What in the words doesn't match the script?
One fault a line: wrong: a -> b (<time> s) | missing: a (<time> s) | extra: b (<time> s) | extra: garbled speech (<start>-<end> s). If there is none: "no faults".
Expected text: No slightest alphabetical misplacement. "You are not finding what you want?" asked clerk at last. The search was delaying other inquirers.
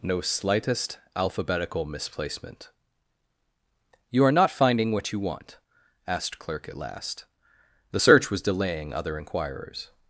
no faults